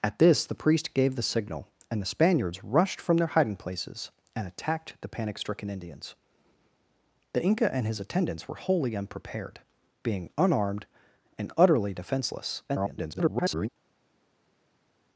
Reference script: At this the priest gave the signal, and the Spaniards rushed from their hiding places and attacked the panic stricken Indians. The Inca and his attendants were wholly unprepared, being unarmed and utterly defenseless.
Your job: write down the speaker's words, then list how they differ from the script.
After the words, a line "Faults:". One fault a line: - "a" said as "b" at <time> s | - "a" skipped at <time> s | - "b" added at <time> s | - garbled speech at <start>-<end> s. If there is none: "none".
At this the priest gave the signal, and the Spaniards rushed from their hiding places and attacked the panic stricken Indians. The Inca and his attendants were wholly unprepared, being unarmed and utterly defenseless. [garbled]
Faults:
- garbled speech at 12.7-13.7 s